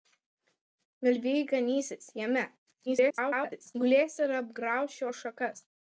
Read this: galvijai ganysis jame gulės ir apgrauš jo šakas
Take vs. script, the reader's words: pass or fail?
fail